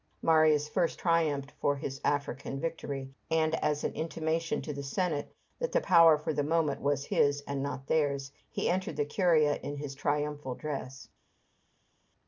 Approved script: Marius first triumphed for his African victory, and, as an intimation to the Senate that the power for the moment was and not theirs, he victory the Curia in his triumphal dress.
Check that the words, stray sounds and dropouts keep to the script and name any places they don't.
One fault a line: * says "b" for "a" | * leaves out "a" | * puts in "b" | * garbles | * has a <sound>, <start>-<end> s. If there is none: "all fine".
* puts in "his"
* says "entered" for "victory"